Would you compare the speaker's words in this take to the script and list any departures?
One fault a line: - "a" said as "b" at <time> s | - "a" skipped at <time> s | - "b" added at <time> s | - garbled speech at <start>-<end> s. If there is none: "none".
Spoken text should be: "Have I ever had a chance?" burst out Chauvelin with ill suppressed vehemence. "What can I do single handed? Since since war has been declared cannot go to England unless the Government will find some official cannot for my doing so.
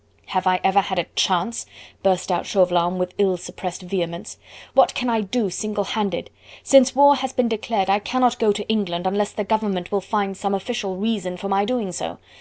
- "since" skipped at 7.0 s
- "I" added at 7.9 s
- "cannot" said as "reason" at 10.9 s